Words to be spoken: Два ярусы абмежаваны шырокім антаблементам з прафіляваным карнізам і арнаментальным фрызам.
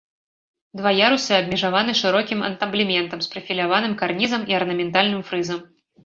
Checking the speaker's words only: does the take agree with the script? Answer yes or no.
yes